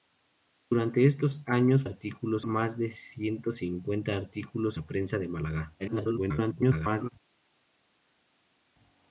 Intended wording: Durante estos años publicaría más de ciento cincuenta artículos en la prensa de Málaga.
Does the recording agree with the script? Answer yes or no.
no